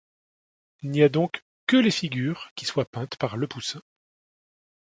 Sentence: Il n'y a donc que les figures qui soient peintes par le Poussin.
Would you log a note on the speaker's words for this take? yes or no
no